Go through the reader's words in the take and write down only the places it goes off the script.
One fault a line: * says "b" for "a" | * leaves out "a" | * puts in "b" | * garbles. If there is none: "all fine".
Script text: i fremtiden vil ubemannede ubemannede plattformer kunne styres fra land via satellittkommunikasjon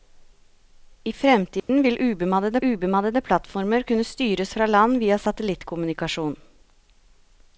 all fine